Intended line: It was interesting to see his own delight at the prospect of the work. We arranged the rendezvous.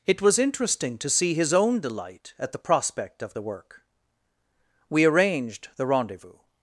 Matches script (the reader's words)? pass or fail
pass